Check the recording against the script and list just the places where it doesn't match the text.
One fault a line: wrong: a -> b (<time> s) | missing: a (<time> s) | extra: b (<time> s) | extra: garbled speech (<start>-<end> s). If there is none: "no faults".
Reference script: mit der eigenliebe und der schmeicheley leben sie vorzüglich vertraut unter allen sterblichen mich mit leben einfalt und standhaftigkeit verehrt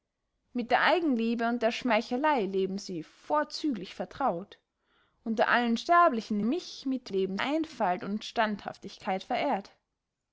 no faults